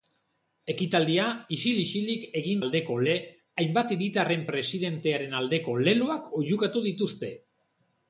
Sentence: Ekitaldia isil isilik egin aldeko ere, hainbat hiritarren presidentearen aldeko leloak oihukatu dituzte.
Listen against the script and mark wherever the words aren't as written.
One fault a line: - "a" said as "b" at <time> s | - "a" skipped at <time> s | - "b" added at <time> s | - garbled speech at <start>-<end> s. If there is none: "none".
none